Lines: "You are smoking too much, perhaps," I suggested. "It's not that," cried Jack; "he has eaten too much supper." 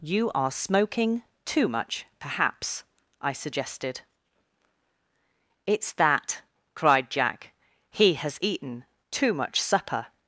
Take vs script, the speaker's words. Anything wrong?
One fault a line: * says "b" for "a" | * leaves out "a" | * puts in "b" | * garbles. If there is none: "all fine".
* leaves out "not"